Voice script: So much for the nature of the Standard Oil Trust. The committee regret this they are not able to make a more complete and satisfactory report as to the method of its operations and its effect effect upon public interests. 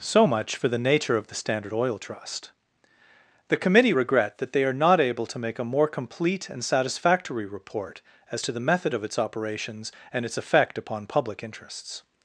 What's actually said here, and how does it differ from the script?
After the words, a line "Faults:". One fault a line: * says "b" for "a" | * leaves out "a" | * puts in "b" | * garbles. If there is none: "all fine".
So much for the nature of the Standard Oil Trust. The committee regret that they are not able to make a more complete and satisfactory report as to the method of its operations and its effect upon public interests.
Faults:
* says "that" for "this"
* leaves out "effect"